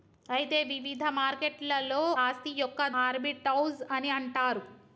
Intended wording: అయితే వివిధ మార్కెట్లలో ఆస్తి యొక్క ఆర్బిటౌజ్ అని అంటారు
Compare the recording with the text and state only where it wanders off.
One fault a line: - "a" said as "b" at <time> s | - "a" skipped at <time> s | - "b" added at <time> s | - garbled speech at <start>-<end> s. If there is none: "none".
none